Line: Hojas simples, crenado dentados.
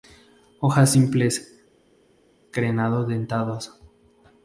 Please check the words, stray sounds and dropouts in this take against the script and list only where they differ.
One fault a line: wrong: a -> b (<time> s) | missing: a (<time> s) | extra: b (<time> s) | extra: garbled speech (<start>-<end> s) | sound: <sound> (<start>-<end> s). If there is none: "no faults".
no faults